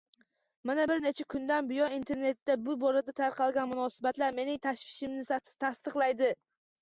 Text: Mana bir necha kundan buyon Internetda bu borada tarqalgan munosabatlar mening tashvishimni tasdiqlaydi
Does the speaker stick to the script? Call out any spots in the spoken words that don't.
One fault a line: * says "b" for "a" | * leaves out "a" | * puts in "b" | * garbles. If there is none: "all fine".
all fine